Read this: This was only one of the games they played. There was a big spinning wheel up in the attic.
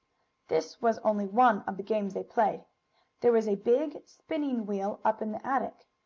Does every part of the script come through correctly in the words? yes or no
yes